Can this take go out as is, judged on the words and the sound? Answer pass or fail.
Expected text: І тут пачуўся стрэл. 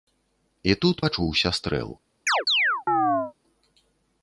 fail